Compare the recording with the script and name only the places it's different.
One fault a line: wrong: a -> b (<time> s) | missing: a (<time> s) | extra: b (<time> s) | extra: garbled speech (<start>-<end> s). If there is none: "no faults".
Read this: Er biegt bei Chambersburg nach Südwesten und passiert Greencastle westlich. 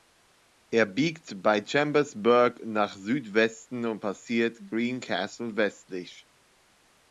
no faults